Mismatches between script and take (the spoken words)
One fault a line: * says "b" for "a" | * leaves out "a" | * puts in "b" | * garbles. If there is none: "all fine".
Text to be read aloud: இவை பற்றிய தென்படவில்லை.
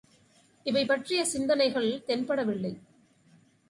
* puts in "சிந்தனைகள்"